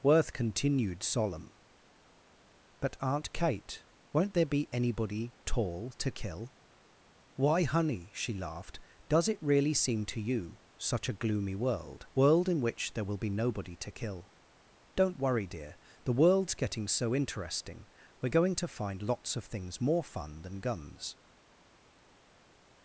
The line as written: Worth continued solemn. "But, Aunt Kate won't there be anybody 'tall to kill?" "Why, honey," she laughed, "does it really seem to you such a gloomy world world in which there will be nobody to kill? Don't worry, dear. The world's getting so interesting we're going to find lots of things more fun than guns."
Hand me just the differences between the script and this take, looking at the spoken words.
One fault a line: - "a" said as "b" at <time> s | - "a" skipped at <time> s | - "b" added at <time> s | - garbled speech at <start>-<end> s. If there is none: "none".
none